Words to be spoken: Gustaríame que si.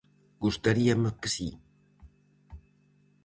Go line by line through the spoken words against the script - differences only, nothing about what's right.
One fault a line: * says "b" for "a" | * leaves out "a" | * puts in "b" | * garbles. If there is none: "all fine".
all fine